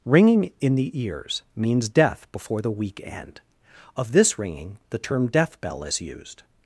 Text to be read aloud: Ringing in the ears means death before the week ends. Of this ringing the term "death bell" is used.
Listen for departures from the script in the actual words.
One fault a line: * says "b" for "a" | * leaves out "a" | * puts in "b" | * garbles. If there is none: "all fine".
* says "end" for "ends"